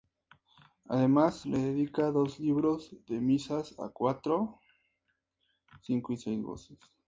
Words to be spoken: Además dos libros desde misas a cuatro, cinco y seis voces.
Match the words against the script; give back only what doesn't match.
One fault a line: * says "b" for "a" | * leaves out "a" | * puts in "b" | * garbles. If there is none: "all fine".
* puts in "le dedica"
* says "de" for "desde"